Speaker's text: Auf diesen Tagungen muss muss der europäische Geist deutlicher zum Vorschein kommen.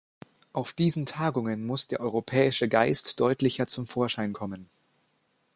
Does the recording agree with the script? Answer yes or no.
no